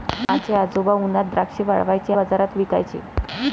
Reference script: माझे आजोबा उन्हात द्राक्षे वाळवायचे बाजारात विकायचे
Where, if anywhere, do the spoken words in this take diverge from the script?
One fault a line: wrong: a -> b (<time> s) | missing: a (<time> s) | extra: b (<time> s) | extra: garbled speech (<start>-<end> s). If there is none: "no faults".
no faults